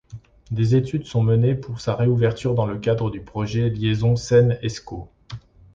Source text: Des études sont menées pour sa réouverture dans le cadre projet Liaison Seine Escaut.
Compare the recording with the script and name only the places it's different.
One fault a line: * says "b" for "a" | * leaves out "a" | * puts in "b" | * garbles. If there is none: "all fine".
* puts in "du"